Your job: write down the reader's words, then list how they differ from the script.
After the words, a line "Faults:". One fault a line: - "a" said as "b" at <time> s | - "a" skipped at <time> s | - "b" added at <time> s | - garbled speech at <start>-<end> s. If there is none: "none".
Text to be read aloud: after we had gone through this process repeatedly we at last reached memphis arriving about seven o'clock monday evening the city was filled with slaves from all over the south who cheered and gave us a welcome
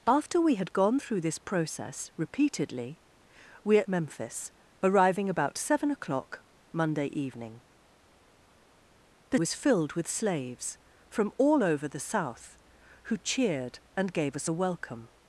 after we had gone through this process repeatedly we at memphis arriving about seven o'clock monday evening the was filled with slaves from all over the south who cheered and gave us a welcome
Faults:
- "last reached" skipped at 3.9 s
- "city" skipped at 9.4 s